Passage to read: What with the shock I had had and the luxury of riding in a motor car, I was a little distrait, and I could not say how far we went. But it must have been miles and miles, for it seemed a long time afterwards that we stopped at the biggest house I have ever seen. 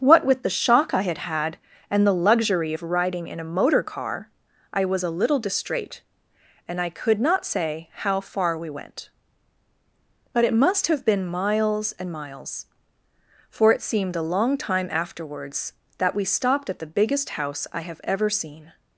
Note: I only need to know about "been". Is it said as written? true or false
true